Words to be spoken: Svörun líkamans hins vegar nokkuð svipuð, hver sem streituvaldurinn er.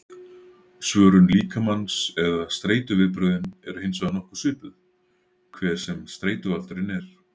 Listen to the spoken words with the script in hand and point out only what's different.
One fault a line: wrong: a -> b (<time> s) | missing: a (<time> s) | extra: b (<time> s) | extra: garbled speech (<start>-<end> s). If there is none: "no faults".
extra: eða streituviðbrögðin eru (2.2 s)